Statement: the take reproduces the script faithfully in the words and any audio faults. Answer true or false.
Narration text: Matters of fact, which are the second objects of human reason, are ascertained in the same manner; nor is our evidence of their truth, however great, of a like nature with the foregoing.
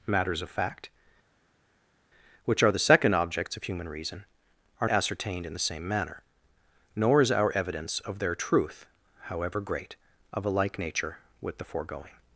true